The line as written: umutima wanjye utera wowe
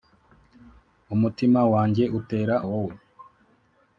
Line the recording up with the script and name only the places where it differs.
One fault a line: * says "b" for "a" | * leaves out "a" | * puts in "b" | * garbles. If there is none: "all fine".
all fine